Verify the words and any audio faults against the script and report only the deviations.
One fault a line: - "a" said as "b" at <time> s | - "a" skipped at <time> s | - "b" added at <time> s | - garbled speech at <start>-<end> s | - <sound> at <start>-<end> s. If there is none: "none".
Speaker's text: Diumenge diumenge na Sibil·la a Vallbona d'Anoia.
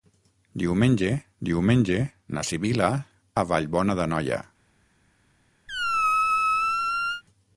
- squeak at 5.7-7.2 s